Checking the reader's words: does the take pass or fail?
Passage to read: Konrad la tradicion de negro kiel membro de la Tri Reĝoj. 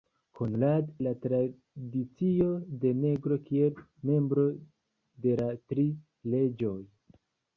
pass